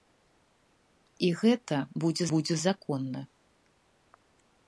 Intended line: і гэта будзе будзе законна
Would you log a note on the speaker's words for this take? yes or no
no